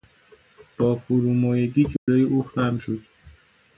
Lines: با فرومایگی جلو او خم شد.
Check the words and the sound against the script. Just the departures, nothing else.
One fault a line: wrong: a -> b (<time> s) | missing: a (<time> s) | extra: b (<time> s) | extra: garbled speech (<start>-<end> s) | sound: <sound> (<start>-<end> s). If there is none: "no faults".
sound: dropout (2.0-2.1 s)